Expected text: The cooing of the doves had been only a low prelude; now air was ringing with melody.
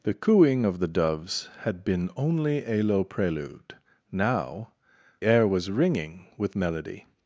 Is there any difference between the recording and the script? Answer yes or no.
no